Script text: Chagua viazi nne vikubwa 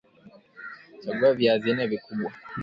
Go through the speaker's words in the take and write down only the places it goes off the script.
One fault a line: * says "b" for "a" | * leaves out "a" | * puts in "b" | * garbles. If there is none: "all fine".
all fine